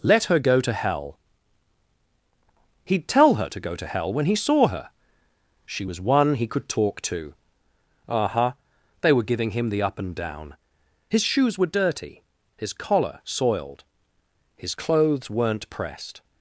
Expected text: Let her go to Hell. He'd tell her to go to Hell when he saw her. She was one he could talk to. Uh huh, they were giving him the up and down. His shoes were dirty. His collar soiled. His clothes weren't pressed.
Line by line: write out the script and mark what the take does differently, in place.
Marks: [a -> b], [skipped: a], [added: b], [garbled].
Let her go to Hell. He'd tell her to go to Hell when he saw her. She was one he could talk to. Uh huh, they were giving him the up and down. His shoes were dirty. His collar soiled. His clothes weren't pressed.